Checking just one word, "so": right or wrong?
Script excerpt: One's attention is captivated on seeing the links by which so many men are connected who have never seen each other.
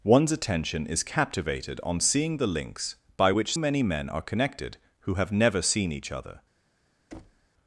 wrong